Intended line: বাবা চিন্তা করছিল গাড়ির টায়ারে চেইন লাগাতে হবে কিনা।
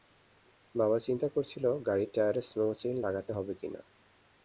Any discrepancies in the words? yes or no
yes